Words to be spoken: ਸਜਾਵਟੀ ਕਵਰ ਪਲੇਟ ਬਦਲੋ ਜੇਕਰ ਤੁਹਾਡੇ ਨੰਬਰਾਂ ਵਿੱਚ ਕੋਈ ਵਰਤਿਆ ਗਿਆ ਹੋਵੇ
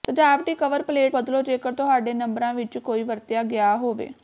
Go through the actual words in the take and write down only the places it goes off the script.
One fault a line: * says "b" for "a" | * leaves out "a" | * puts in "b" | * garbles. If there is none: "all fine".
all fine